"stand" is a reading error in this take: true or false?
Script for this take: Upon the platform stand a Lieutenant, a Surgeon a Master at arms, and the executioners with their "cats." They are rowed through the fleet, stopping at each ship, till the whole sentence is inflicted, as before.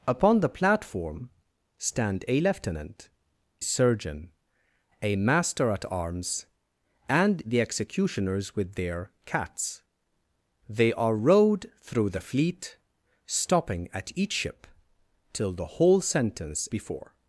false